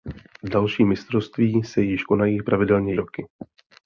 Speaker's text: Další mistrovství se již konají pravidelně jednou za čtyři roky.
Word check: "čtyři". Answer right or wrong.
wrong